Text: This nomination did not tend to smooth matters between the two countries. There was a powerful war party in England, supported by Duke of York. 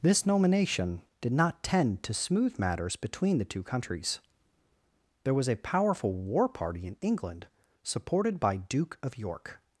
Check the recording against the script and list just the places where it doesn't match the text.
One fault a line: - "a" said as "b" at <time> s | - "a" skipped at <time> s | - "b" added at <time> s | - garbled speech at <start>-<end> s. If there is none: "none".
none